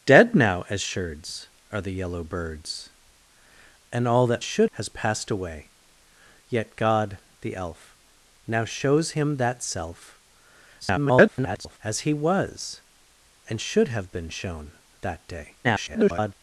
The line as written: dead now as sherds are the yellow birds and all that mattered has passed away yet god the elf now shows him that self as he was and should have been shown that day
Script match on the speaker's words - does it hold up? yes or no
no